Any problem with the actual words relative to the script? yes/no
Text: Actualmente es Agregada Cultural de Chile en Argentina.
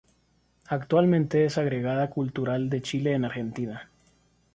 no